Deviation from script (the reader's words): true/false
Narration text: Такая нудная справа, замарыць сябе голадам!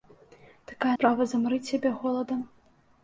true